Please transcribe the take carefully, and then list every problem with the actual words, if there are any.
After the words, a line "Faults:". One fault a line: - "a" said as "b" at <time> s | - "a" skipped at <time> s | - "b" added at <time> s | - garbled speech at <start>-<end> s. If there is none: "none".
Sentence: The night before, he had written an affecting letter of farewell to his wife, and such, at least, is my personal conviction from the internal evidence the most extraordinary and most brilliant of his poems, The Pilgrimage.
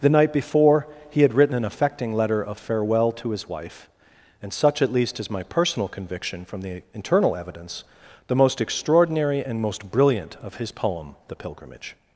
The night before, he had written an affecting letter of farewell to his wife, and such, at least, is my personal conviction from the internal evidence the most extraordinary and most brilliant of his poem, The Pilgrimage.
Faults:
- "poems" said as "poem" at 10.7 s